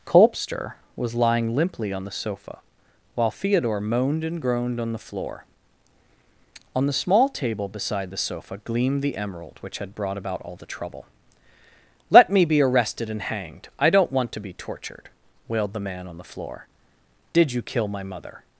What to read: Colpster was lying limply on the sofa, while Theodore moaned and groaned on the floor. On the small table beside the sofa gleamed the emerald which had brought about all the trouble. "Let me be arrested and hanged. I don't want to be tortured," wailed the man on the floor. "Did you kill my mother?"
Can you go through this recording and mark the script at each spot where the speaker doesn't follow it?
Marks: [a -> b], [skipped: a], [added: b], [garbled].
Colpster was lying limply on the sofa, while Theodore moaned and groaned on the floor. On the small table beside the sofa gleamed the emerald which had brought about all the trouble. "Let me be arrested and hanged. I don't want to be tortured," wailed the man on the floor. "Did you kill my mother?"